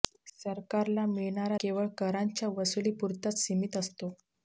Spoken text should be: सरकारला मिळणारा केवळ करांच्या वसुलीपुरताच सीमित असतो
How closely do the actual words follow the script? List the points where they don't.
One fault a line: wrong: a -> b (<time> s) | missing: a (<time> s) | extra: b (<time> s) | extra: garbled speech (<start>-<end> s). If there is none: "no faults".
no faults